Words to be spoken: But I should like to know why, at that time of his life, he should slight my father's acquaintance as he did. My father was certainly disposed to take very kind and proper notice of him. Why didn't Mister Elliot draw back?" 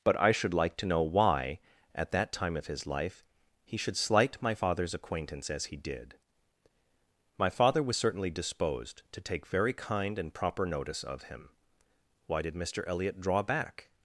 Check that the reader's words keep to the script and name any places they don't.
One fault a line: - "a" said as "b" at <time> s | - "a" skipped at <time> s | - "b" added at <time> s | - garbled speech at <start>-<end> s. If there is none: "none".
- "didn't" said as "did" at 12.4 s